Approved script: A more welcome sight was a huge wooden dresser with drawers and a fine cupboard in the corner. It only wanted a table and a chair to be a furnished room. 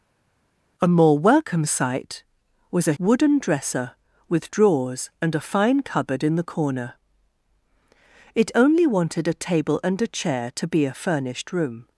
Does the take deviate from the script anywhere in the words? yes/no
yes